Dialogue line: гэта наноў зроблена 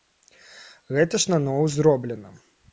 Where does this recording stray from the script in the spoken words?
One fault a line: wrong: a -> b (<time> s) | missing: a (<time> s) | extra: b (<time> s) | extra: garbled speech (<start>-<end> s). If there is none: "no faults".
extra: ж (1.2 s)